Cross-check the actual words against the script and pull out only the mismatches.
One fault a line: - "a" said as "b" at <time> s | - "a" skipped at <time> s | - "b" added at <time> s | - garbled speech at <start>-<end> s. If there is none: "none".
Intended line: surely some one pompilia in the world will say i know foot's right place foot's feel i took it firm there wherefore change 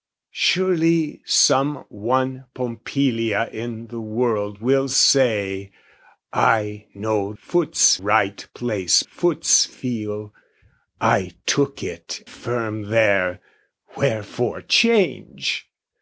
none